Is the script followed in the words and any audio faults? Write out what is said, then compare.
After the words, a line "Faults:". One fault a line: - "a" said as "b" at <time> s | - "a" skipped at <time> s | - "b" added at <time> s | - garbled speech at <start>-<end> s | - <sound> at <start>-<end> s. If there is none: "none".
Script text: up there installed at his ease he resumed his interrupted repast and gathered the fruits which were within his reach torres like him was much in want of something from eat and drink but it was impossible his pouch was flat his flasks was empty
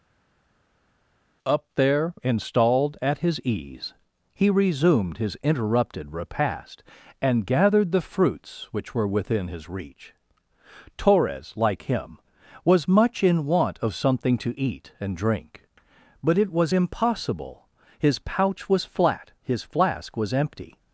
up there installed at his ease he resumed his interrupted repast and gathered the fruits which were within his reach torres like him was much in want of something to eat and drink but it was impossible his pouch was flat his flask was empty
Faults:
- "from" said as "to" at 14.4 s
- "flasks" said as "flask" at 19.6 s